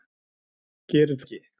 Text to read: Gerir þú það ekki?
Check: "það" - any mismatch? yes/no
yes